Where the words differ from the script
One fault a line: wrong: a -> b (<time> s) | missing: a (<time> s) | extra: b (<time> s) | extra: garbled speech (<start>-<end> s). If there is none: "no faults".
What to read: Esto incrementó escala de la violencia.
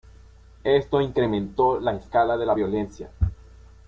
extra: la (1.8 s)